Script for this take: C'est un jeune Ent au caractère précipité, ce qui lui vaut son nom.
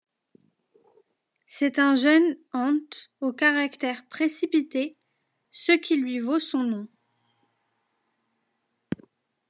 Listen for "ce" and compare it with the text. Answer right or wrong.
right